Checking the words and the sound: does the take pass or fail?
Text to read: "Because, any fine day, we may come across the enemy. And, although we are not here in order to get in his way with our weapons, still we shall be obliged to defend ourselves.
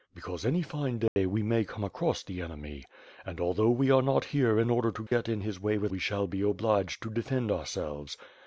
fail